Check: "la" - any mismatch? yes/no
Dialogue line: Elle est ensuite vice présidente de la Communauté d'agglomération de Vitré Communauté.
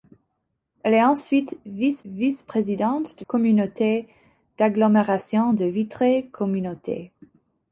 yes